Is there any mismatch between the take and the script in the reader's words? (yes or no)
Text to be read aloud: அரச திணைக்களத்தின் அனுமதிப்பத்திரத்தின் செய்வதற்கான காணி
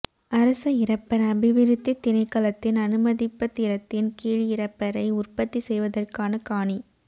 yes